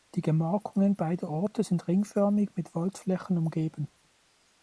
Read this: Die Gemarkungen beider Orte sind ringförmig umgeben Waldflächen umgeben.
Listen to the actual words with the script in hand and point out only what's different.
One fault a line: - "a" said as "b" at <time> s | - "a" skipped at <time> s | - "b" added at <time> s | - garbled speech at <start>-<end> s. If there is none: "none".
- "umgeben" said as "mit" at 2.5 s